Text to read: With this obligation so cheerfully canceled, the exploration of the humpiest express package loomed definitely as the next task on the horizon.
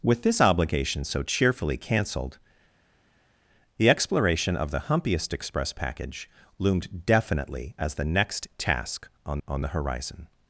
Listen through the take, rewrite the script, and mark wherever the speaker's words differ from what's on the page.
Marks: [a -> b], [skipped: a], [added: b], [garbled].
With this obligation so cheerfully canceled, the exploration of the humpiest express package loomed definitely as the next task on [added: on] the horizon.